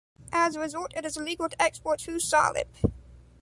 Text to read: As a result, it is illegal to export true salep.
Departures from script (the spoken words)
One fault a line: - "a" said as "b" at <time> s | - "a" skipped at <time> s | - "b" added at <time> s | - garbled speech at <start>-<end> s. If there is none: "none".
none